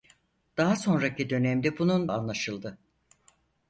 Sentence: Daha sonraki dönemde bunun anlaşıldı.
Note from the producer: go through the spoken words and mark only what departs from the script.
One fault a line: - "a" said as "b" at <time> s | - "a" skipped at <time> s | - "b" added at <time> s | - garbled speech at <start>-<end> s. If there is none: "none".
none